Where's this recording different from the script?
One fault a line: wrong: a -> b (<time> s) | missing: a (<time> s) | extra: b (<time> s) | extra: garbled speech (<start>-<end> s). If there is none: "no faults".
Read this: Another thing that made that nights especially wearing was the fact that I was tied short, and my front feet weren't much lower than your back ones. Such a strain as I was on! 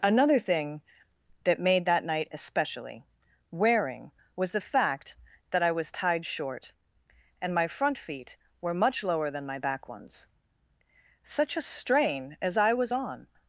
wrong: nights -> night (2.0 s)
wrong: weren't -> were (8.6 s)
wrong: your -> my (9.4 s)